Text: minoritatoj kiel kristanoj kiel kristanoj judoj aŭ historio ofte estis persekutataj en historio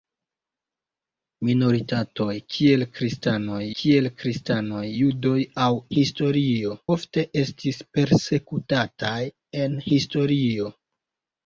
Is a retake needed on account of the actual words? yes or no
no